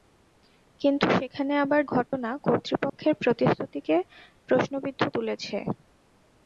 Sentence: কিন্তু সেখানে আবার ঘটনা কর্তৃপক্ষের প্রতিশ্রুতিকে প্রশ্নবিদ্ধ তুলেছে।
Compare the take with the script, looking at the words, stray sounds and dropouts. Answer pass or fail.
fail